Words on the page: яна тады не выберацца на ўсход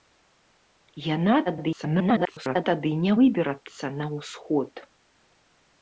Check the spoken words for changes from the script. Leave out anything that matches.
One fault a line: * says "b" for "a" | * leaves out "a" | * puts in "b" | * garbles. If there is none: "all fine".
* garbles